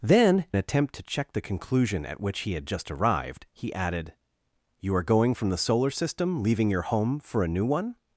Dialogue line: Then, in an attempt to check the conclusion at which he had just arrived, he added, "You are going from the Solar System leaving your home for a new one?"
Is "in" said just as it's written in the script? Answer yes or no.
no